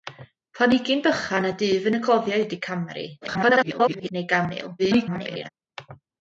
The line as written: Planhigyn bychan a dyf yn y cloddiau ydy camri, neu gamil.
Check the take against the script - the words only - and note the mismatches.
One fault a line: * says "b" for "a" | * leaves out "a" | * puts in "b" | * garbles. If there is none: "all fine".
* garbles
* garbles